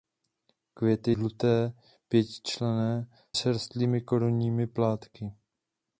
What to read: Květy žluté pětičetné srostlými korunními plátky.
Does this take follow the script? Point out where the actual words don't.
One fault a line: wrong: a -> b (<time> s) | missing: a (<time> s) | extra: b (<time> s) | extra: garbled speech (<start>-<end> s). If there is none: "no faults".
no faults